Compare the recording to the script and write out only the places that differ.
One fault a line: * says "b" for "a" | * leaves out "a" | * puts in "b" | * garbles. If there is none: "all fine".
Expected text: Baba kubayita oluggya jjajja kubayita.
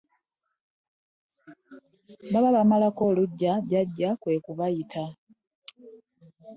* says "bamalako" for "kubayita"
* puts in "kwe"